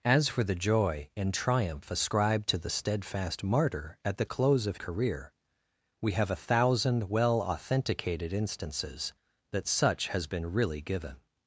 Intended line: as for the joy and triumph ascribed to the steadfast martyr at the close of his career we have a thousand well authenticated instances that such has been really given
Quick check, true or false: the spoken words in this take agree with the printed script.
false